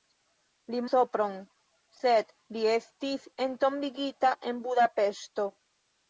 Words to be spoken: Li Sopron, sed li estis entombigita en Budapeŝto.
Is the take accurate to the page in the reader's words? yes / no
yes